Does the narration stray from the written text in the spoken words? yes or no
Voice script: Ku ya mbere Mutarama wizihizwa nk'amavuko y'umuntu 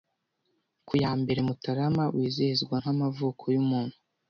no